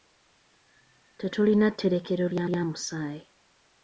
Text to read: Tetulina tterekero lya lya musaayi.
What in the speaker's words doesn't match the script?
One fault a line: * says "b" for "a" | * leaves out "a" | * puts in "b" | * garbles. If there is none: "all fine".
all fine